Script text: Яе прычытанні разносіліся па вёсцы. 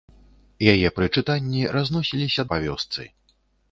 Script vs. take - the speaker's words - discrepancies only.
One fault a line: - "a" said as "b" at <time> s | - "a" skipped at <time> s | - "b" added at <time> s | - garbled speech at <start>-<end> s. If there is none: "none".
none